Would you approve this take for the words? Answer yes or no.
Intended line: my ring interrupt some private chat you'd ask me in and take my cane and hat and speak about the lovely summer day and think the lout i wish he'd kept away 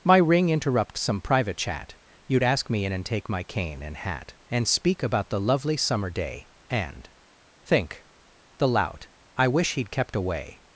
yes